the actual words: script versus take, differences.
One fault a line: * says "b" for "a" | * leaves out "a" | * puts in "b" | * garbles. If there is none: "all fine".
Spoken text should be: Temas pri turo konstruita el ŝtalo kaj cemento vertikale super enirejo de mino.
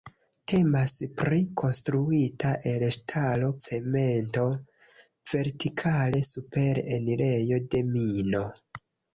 * leaves out "turo"
* leaves out "kaj"